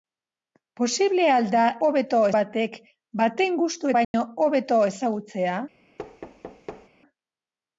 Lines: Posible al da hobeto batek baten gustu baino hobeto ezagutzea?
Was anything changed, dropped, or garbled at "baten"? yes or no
no